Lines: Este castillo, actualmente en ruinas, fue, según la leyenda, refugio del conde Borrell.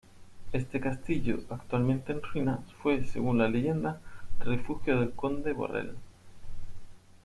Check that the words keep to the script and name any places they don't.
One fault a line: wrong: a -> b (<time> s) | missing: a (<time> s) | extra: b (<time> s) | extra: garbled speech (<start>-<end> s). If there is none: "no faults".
no faults